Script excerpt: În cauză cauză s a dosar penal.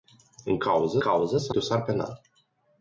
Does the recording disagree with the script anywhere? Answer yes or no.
no